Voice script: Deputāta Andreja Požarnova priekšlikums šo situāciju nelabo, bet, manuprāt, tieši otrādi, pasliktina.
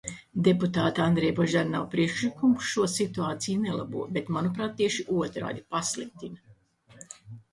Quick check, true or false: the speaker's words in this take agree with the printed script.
true